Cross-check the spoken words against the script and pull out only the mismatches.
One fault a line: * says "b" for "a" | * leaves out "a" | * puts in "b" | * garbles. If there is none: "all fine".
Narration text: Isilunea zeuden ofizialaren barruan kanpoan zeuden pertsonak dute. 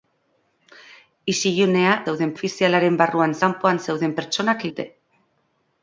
all fine